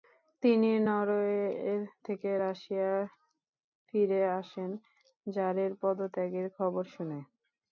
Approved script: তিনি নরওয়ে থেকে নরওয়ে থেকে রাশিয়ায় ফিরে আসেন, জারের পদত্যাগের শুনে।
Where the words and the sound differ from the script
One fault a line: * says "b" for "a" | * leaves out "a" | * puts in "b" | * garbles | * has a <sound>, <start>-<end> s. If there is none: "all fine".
* leaves out "নরওয়ে থেকে"
* puts in "খবর"